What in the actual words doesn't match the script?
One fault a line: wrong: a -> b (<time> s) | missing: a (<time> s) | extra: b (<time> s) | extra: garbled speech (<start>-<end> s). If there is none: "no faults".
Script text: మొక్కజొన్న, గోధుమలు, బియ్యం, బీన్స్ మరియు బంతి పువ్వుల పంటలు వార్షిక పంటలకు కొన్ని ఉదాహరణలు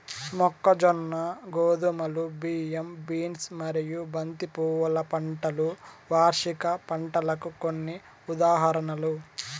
no faults